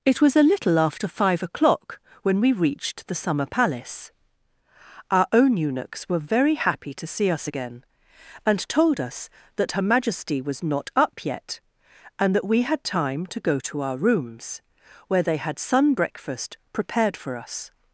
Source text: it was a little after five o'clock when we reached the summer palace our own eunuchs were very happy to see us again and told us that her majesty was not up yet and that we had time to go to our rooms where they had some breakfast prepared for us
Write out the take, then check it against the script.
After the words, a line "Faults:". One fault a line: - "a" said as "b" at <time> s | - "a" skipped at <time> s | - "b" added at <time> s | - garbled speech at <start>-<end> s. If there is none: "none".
it was a little after five o'clock when we reached the summer palace our own eunuchs were very happy to see us again and told us that her majesty was not up yet and that we had time to go to our rooms where they had sun breakfast prepared for us
Faults:
- "some" said as "sun" at 15.6 s